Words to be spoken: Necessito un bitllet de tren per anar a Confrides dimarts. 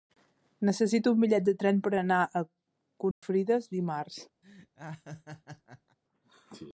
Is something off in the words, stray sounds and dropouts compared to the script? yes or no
yes